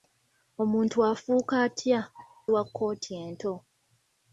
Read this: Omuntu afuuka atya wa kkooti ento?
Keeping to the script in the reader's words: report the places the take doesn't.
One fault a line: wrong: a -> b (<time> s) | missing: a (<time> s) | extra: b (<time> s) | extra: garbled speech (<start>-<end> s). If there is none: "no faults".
no faults